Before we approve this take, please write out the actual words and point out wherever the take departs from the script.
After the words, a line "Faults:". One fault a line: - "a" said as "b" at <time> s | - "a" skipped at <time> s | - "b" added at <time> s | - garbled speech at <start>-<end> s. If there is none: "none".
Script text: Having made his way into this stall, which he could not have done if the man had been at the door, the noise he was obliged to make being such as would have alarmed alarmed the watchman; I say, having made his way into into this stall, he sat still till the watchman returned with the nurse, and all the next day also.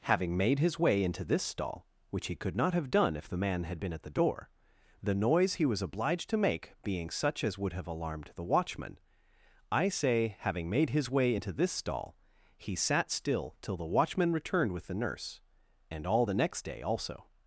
Having made his way into this stall, which he could not have done if the man had been at the door, the noise he was obliged to make being such as would have alarmed the watchman; I say, having made his way into this stall, he sat still till the watchman returned with the nurse, and all the next day also.
Faults:
- "alarmed" skipped at 8.3 s
- "into" skipped at 11.5 s